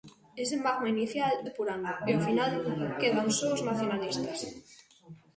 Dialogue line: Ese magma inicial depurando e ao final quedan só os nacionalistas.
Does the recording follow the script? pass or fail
pass